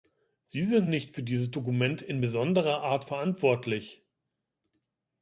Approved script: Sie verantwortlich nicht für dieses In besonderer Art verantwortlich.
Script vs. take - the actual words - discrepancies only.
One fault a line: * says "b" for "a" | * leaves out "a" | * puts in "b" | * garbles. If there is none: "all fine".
* says "sind" for "verantwortlich"
* puts in "Dokument"